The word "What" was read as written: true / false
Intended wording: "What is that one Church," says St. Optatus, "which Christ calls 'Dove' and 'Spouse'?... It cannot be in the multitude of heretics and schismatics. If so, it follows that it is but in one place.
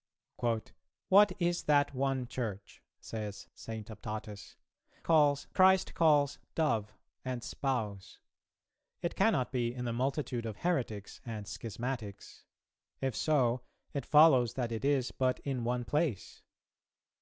true